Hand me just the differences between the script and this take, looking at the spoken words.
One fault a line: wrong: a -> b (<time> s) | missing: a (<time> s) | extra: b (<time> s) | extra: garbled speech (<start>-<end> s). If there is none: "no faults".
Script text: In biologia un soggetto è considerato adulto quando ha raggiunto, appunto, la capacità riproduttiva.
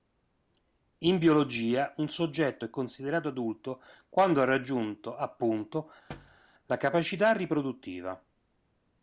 no faults